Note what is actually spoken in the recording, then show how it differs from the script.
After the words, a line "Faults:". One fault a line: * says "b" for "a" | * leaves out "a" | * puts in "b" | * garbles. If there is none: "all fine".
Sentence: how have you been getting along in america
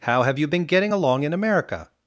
how have you been getting along in america
Faults:
all fine